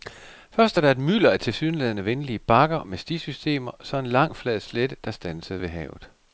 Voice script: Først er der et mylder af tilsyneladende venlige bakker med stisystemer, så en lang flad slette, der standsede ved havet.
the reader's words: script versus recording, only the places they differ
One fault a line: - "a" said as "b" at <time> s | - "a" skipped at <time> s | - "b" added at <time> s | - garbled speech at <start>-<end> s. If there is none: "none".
none